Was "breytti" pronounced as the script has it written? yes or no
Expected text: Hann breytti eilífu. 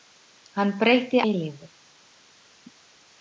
yes